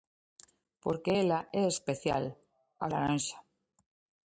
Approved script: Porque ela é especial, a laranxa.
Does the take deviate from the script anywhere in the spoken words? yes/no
no